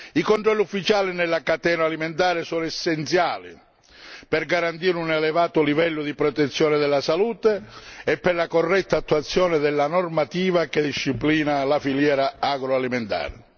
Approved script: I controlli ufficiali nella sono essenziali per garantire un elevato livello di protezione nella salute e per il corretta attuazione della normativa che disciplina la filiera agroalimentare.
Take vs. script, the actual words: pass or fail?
fail